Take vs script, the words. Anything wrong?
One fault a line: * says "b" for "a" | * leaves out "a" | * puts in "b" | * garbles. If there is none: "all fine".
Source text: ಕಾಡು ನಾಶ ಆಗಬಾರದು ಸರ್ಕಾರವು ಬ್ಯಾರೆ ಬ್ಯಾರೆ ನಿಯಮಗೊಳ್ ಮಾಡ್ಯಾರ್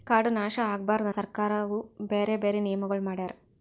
all fine